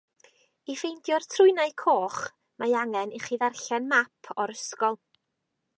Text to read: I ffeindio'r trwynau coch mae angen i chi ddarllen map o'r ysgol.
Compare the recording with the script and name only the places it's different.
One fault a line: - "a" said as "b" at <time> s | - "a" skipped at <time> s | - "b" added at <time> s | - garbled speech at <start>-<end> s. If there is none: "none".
none